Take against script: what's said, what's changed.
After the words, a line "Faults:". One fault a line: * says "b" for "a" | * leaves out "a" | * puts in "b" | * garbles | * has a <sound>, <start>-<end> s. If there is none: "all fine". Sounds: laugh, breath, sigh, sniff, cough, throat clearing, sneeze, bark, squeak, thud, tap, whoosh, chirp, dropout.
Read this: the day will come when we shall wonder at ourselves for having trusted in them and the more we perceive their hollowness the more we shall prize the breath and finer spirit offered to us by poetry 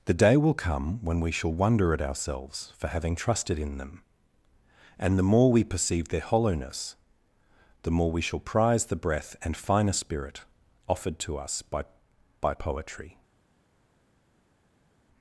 the day will come when we shall wonder at ourselves for having trusted in them and the more we perceive their hollowness the more we shall prize the breath and finer spirit offered to us by by poetry
Faults:
* puts in "by"